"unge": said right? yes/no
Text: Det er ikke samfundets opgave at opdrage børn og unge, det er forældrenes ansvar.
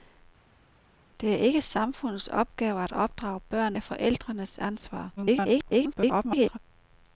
no